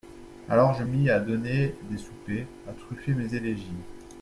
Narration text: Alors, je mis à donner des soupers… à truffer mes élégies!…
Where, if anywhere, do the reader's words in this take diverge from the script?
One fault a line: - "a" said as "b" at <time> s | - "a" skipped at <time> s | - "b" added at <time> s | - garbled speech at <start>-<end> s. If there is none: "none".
none